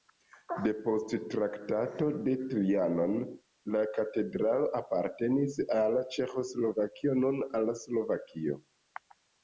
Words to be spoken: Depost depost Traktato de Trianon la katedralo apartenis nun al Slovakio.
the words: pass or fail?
fail